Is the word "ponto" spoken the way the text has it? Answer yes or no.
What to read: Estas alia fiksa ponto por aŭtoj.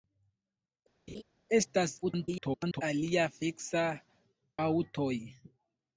no